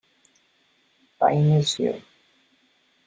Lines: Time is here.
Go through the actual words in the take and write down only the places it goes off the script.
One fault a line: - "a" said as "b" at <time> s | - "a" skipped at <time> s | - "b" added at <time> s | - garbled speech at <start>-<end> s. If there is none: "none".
none